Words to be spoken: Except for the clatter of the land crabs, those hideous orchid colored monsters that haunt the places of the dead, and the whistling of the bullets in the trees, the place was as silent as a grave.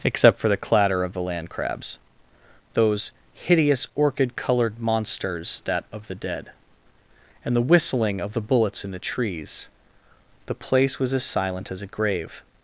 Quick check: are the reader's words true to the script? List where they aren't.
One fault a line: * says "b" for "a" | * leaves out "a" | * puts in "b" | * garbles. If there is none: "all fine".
* leaves out "haunt the places"